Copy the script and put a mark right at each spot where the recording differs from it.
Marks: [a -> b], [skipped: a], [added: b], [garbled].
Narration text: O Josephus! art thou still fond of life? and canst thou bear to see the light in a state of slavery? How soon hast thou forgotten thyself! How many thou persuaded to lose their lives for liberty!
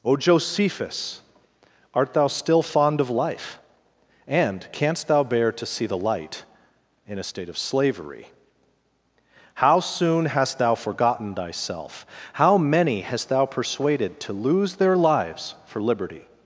O Josephus! art thou still fond of life? and canst thou bear to see the light in a state of slavery? How soon hast thou forgotten thyself! How many [added: hast] thou persuaded to lose their lives for liberty!